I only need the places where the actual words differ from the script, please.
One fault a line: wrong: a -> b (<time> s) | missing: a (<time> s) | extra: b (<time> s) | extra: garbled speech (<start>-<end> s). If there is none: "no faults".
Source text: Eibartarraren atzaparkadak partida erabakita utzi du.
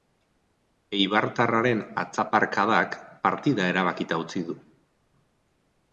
no faults